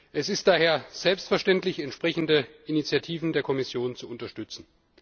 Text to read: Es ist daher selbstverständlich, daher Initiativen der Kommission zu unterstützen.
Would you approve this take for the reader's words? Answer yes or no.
no